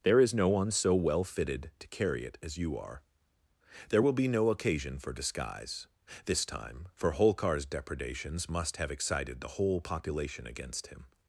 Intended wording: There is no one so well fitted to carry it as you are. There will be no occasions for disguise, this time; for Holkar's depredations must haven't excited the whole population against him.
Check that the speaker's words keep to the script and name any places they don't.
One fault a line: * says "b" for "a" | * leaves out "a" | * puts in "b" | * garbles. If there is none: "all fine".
* says "occasion" for "occasions"
* says "have" for "haven't"